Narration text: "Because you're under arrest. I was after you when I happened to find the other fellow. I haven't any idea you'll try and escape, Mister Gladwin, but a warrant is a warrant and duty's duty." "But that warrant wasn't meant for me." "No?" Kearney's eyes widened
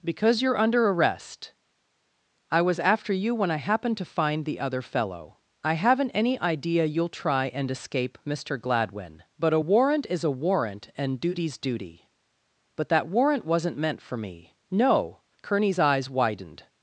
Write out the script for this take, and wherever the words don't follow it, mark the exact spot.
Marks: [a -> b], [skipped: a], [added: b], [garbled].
"Because you're under arrest. I was after you when I happened to find the other fellow. I haven't any idea you'll try and escape, Mister Gladwin, but a warrant is a warrant and duty's duty." "But that warrant wasn't meant for me." "No?" Kearney's eyes widened